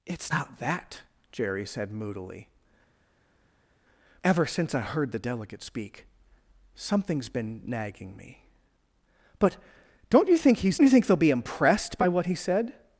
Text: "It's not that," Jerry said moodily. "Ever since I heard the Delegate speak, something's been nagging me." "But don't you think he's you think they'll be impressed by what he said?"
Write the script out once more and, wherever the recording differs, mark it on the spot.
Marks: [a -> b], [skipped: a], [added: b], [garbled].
"It's not that," Jerry said moodily. "Ever since I heard the Delegate speak, something's been nagging me." "But don't you think he's you think they'll be impressed by what he said?"